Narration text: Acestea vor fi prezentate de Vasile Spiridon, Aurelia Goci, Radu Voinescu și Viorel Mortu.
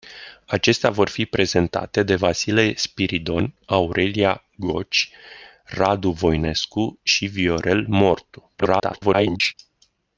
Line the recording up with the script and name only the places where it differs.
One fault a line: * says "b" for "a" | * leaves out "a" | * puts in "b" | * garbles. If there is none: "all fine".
* garbles